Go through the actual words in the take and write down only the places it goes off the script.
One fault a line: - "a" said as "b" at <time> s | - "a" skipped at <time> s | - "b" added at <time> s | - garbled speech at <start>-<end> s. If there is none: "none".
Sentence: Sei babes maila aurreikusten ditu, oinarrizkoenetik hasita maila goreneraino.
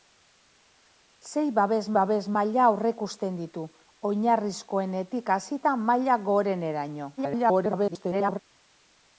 - "babes" added at 2.0 s
- garbled speech at 7.2-8.4 s